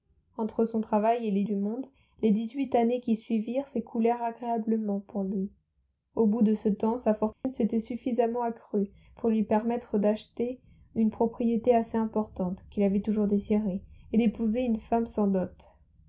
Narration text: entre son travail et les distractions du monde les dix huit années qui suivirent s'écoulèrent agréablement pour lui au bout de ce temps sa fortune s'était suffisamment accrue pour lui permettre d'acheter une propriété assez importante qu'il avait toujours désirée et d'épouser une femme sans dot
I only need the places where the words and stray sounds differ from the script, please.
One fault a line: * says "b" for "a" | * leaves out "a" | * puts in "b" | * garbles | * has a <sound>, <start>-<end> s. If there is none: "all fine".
* leaves out "distractions"
* has a dropout, 7.3-7.4 s